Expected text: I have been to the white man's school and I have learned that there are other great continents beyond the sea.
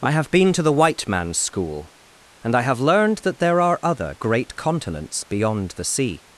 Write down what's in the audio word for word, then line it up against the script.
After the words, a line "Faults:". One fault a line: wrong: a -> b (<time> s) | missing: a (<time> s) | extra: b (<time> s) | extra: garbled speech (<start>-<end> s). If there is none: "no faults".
I have been to the white man's school and I have learned that there are other great continents beyond the sea.
Faults:
no faults